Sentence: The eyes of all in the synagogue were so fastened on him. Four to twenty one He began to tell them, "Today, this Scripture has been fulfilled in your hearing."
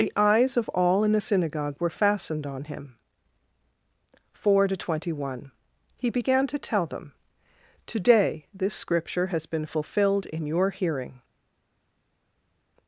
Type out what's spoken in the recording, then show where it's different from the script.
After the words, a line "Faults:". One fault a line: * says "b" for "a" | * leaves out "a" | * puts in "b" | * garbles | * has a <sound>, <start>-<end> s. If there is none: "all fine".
The eyes of all in the synagogue were fastened on him. Four to twenty one He began to tell them, "Today, this Scripture has been fulfilled in your hearing."
Faults:
* leaves out "so"